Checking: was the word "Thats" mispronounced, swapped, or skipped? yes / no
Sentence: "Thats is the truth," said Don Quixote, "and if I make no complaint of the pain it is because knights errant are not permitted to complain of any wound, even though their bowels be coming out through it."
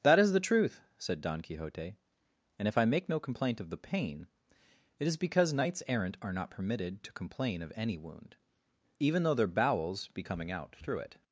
yes